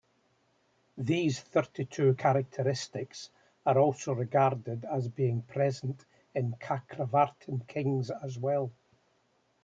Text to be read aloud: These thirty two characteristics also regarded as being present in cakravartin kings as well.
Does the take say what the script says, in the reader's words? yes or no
no